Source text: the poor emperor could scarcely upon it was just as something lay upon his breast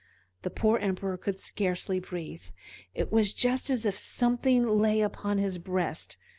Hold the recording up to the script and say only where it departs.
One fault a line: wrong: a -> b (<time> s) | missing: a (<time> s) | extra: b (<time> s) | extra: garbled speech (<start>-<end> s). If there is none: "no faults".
wrong: upon -> breathe (2.0 s)
extra: if (3.8 s)